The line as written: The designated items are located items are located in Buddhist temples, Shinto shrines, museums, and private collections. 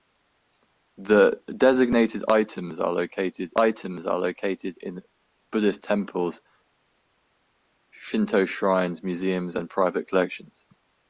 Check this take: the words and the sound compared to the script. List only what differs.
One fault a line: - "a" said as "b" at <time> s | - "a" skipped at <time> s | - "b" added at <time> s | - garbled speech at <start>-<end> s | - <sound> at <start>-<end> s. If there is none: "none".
none